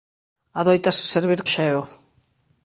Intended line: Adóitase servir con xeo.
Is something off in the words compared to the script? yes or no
yes